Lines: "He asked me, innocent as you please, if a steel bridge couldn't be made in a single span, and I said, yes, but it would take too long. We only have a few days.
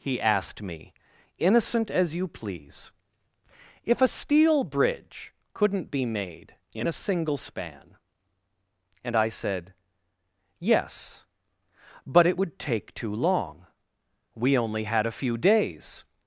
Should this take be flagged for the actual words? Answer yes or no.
yes